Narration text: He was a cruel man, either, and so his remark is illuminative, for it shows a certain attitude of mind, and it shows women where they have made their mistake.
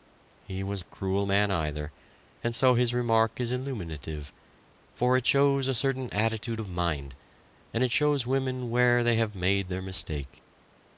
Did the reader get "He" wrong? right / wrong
right